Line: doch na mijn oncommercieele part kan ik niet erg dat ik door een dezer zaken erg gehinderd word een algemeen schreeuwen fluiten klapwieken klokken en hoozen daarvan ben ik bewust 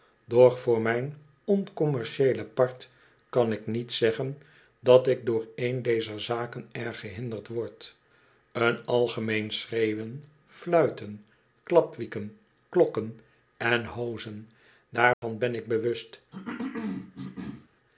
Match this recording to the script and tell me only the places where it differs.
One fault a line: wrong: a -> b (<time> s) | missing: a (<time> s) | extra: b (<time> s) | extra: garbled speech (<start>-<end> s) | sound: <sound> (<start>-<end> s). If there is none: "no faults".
wrong: na -> voor (0.6 s)
wrong: erg -> zeggen (3.9 s)
sound: dropout (15.1-15.2 s)
sound: cough (16.3-17.7 s)